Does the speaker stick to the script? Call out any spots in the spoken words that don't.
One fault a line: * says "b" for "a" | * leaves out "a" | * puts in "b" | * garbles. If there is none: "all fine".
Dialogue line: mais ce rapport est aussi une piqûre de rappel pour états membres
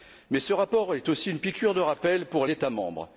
all fine